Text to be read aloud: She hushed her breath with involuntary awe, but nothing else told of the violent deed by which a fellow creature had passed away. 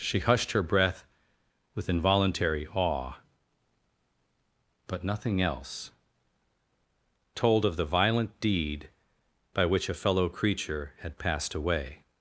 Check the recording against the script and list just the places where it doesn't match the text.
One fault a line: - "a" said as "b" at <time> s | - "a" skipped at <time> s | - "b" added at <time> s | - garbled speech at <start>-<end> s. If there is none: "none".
none